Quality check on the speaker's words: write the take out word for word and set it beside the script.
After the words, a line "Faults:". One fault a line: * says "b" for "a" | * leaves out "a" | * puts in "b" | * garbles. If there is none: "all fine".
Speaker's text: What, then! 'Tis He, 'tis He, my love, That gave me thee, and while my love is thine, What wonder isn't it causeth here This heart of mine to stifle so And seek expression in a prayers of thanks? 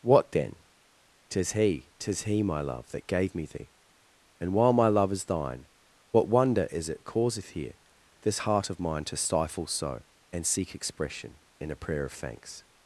What, then! 'Tis He, 'tis He, my love, That gave me thee, and while my love is thine, What wonder is it causeth here This heart of mine to stifle so And seek expression in a prayer of thanks?
Faults:
* says "is" for "isn't"
* says "prayer" for "prayers"